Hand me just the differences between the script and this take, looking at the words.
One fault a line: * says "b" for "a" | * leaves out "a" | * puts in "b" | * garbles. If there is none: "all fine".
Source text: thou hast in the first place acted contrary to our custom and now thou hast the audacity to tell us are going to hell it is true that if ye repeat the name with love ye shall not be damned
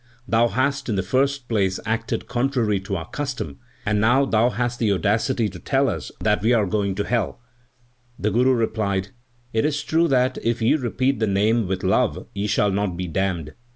* puts in "that we"
* puts in "the guru replied"